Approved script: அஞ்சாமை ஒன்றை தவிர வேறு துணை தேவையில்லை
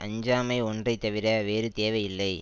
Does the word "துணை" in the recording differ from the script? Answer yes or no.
yes